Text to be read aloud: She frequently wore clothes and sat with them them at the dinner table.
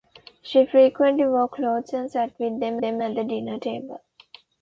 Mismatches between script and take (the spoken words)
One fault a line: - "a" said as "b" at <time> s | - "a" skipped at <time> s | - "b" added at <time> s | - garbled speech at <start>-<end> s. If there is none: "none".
none